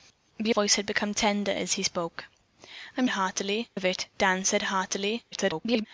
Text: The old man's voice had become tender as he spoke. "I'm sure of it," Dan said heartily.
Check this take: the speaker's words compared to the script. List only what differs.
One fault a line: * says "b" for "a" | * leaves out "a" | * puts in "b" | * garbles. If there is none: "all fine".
* leaves out "old man's"
* says "heartily" for "sure"
* garbles